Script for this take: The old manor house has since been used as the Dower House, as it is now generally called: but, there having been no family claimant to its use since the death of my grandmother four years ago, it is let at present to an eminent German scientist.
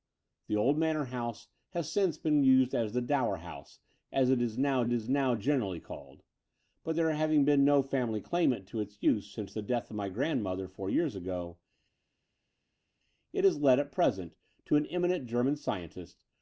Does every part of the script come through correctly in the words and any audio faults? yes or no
no